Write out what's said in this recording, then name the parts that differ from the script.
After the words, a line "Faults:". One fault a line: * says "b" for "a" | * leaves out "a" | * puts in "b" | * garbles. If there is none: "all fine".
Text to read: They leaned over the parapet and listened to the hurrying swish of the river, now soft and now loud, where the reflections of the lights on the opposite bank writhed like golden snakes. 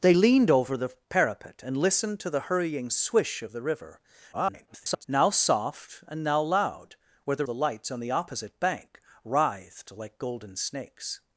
They leaned over the parapet and listened to the hurrying swish of the river, [garbled] now soft and now loud, where the the lights on the opposite bank writhed like golden snakes.
Faults:
* garbles
* leaves out "reflections of"